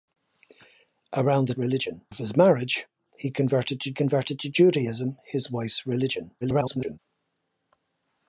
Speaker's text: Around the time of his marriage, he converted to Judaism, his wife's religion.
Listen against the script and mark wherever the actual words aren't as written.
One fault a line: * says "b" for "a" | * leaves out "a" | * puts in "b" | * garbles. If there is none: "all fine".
* says "religion" for "time"
* puts in "converted to"
* garbles